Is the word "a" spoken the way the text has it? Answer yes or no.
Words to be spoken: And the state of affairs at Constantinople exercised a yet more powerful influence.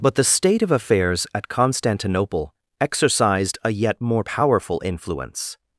yes